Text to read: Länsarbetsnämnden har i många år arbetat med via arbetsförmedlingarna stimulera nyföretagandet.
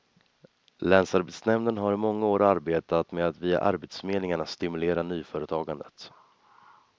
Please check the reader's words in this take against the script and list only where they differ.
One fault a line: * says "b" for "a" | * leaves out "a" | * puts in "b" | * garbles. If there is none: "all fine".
* puts in "att"